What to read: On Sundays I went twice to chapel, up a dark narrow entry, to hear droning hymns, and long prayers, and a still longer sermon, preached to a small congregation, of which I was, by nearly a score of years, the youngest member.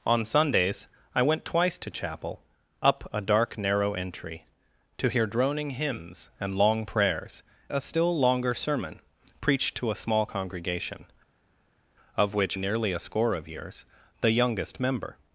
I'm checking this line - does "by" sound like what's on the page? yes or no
no